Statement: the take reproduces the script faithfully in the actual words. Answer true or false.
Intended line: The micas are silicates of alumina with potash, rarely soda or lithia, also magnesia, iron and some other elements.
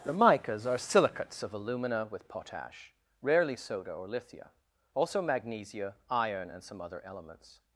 true